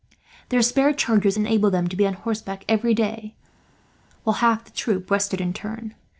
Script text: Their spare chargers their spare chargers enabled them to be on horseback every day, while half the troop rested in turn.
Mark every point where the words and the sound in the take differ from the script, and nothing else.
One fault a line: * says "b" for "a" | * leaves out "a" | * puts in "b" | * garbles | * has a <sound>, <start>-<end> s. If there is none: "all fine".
* leaves out "their spare chargers"